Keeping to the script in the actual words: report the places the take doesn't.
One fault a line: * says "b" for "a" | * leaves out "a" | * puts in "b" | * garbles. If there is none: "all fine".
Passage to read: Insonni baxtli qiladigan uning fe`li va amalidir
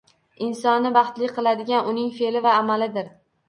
all fine